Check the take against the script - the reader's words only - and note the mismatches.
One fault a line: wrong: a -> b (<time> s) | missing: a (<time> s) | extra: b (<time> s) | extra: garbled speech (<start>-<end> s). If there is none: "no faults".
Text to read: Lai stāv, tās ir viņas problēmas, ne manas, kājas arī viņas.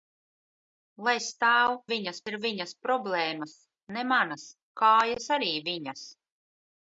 wrong: tās -> viņas (1.9 s)